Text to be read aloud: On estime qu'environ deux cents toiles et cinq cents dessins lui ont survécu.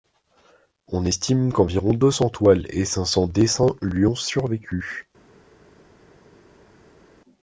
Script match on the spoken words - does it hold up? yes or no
yes